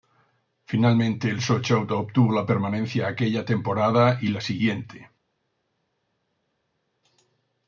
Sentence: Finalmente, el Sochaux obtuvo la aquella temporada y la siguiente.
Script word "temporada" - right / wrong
right